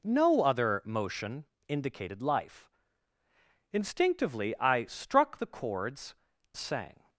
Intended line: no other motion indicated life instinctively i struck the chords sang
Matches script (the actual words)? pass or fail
pass